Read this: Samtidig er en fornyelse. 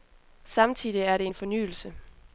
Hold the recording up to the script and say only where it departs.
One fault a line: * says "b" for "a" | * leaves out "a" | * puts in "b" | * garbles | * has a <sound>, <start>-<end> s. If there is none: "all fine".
* puts in "det"